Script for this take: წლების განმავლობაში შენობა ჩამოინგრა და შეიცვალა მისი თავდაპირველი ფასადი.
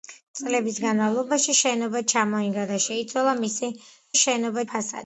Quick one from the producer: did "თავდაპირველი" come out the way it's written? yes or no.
no